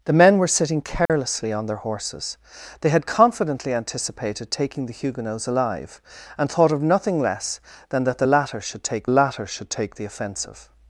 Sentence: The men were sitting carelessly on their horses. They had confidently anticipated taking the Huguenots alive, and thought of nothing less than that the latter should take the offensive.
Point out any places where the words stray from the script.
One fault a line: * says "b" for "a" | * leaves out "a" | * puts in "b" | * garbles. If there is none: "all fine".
* puts in "latter should take"